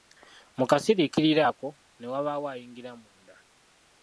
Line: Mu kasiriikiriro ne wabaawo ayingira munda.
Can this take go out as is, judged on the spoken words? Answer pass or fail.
fail